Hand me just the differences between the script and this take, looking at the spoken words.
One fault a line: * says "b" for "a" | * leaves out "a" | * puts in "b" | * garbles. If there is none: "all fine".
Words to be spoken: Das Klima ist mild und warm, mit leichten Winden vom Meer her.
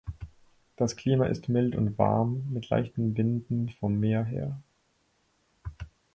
all fine